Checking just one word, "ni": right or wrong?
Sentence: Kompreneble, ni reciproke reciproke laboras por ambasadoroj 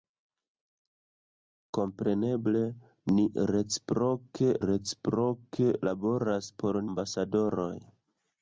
right